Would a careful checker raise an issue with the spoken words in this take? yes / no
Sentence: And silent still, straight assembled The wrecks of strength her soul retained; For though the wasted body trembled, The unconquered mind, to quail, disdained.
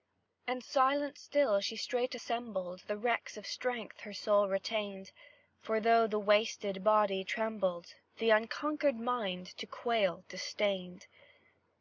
yes